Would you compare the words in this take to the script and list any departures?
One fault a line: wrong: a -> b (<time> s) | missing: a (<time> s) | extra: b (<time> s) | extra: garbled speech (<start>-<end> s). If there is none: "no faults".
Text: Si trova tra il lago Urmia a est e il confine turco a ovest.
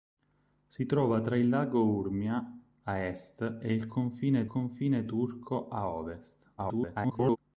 extra: confine (4.4 s)
extra: garbled speech (6.6-7.4 s)